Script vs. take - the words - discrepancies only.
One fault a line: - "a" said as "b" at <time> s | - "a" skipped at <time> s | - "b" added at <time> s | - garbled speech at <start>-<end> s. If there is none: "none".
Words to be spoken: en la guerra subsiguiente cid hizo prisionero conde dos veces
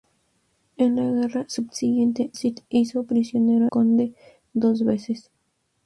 none